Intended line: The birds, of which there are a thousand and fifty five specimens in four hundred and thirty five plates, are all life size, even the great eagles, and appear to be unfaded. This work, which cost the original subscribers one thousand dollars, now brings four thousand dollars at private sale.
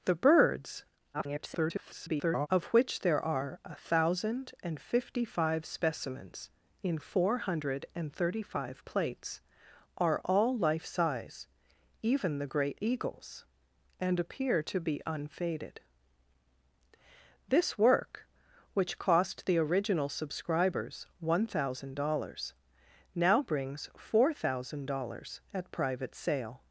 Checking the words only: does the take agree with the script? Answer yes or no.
no